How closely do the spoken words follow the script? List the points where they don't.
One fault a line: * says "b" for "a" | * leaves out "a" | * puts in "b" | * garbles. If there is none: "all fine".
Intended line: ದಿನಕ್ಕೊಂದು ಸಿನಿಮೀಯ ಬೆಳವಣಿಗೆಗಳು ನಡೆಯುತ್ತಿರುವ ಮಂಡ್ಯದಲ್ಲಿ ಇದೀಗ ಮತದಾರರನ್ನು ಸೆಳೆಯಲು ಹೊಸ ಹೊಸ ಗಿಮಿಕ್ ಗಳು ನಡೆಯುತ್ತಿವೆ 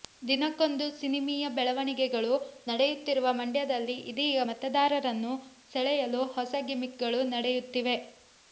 * leaves out "ಹೊಸ"